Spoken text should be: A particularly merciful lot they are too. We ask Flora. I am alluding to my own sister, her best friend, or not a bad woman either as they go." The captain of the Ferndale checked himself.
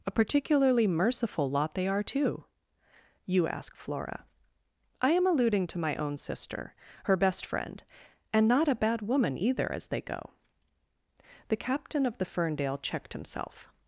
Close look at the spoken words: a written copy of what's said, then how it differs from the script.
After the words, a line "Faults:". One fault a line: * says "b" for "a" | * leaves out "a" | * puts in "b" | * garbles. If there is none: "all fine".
A particularly merciful lot they are too. You ask Flora. I am alluding to my own sister, her best friend, and not a bad woman either as they go." The captain of the Ferndale checked himself.
Faults:
* says "You" for "We"
* says "and" for "or"